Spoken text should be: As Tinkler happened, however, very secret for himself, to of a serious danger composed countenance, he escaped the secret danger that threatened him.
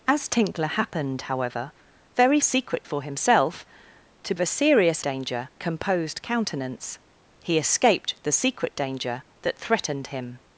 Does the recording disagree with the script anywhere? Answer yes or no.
no